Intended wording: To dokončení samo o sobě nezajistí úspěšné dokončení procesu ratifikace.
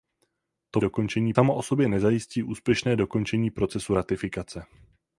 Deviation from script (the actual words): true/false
false